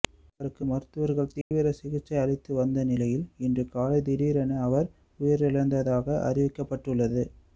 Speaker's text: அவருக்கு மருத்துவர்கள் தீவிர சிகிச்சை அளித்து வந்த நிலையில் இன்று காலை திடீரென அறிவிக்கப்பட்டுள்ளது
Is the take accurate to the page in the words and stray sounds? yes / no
no